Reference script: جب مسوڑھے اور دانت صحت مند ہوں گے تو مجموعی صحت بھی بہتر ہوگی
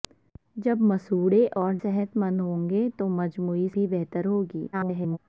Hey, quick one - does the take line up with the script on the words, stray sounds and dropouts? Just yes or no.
no